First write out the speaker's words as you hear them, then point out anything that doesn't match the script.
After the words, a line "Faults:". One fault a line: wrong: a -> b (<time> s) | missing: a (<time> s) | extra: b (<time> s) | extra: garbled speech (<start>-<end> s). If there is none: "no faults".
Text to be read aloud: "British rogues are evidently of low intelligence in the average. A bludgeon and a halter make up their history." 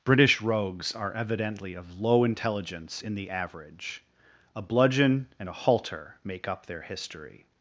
"British rogues are evidently of low intelligence in the average. A bludgeon and a halter make up their history."
Faults:
no faults